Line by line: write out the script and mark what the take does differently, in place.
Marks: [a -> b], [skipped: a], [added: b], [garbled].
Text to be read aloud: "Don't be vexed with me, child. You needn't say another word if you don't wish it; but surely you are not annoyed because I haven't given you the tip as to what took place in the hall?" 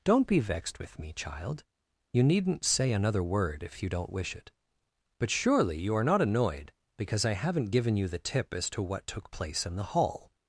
"Don't be vexed with me, child. You needn't say another word if you don't wish it; but surely you are not annoyed because I haven't given you the tip as to what took place in the hall?"